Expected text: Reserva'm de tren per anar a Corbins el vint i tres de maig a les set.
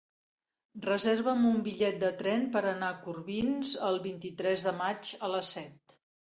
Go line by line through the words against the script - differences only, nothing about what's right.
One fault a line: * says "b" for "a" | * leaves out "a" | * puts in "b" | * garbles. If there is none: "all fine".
* puts in "un bitllet"